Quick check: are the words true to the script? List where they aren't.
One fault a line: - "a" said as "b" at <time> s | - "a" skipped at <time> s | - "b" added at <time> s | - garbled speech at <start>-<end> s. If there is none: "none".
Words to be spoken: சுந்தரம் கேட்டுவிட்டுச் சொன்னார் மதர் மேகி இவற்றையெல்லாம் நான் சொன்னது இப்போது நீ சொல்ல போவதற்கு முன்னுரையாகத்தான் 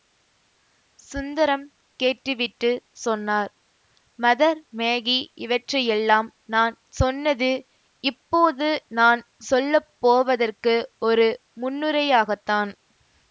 - "நீ" said as "நான்" at 9.0 s
- "ஒரு" added at 11.1 s